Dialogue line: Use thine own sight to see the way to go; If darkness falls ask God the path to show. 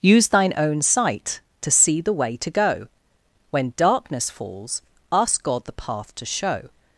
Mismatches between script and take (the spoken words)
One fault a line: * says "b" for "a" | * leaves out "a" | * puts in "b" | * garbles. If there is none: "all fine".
* says "When" for "If"